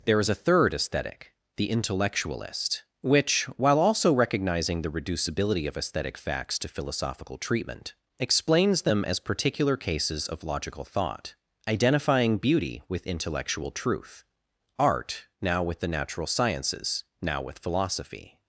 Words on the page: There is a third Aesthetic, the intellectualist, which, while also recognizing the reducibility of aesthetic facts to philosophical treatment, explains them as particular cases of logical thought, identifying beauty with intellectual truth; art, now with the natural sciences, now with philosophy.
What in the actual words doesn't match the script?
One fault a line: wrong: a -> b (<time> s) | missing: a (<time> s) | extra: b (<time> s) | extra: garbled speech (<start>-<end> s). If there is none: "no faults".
no faults